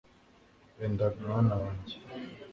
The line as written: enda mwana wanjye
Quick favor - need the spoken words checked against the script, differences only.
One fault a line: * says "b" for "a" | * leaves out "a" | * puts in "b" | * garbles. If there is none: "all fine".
all fine